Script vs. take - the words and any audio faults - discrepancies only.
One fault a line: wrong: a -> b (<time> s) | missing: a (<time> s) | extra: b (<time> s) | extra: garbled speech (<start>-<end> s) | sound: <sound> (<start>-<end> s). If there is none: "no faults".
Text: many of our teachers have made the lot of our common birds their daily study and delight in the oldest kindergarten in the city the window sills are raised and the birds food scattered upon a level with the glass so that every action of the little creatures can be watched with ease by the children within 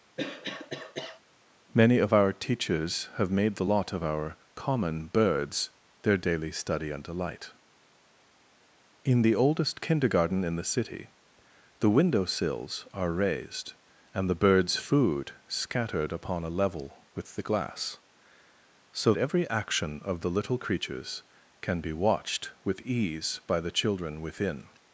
sound: cough (0.2-1.2 s)
missing: that (19.1 s)